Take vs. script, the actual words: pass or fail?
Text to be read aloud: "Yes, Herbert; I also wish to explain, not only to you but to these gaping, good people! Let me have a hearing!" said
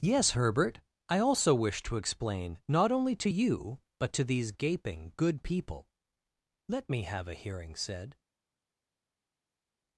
pass